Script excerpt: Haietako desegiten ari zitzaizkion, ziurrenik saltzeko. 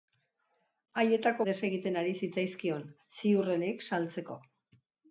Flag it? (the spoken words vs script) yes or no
no